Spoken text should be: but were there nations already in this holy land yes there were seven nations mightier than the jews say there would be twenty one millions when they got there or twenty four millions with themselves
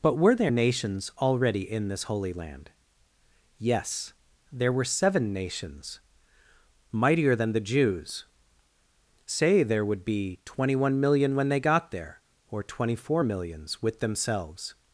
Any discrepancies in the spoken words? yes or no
yes